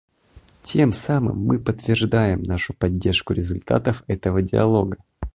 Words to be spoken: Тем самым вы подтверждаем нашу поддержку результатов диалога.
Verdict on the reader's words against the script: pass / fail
fail